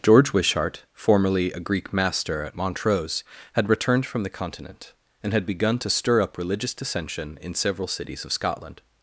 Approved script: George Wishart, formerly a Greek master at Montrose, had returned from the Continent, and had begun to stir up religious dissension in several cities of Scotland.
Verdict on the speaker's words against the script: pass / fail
pass